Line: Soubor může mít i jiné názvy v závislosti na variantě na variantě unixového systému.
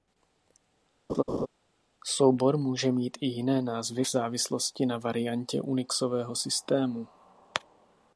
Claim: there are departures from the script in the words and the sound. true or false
true